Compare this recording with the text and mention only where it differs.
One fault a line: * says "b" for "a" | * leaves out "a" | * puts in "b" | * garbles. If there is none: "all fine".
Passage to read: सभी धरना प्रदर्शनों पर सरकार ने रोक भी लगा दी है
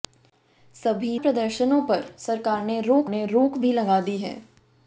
* leaves out "धरना"
* puts in "ने रोक"